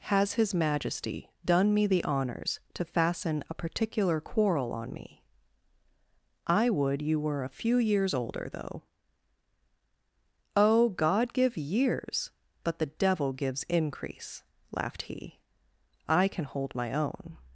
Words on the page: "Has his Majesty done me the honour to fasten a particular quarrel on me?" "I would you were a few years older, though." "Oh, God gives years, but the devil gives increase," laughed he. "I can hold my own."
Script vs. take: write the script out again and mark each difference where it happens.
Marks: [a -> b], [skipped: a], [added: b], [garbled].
"Has his Majesty done me the [honour -> honours] to fasten a particular quarrel on me?" "I would you were a few years older, though." "Oh, God [gives -> give] years, but the devil gives increase," laughed he. "I can hold my own."